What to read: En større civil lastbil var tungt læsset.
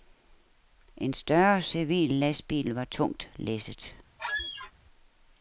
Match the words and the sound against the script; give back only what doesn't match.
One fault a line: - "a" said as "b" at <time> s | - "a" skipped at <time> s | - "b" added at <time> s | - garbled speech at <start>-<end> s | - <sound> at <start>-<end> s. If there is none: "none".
- squeak at 4.2-4.7 s